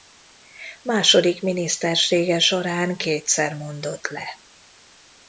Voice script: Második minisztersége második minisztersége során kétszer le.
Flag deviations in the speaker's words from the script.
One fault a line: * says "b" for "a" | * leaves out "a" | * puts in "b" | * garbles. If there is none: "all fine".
* leaves out "második minisztersége"
* puts in "mondott"